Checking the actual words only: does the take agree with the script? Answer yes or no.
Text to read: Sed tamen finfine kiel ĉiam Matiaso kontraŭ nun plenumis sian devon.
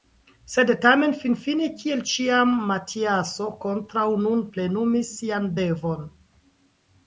yes